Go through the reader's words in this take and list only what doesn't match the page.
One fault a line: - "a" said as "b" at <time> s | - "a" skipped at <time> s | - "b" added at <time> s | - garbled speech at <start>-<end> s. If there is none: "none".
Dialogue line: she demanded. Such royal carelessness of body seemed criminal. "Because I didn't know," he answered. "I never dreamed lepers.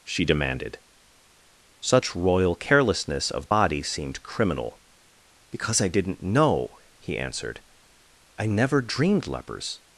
none